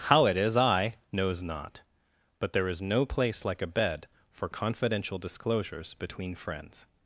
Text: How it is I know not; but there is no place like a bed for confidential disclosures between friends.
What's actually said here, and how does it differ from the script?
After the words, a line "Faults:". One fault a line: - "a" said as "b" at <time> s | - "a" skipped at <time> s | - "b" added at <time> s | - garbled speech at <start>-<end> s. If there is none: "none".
How it is I knows not; but there is no place like a bed for confidential disclosures between friends.
Faults:
- "know" said as "knows" at 1.1 s